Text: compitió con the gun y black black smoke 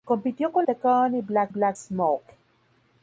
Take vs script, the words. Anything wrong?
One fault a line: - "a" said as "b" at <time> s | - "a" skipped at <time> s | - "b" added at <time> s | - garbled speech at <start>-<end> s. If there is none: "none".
none